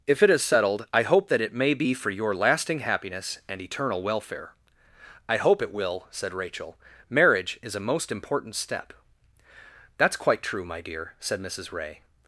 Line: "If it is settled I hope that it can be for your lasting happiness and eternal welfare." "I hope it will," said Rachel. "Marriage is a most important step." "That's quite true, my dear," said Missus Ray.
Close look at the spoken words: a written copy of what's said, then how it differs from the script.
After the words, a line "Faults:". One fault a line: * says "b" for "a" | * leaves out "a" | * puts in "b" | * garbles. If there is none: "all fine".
"If it is settled I hope that it may be for your lasting happiness and eternal welfare." "I hope it will," said Rachel. "Marriage is a most important step." "That's quite true, my dear," said Missus Ray.
Faults:
* says "may" for "can"